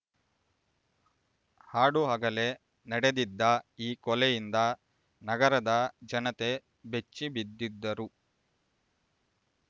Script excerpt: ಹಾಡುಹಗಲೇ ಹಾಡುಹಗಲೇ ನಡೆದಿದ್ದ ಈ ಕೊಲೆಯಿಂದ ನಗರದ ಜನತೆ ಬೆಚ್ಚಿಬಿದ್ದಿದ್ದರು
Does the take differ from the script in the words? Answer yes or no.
yes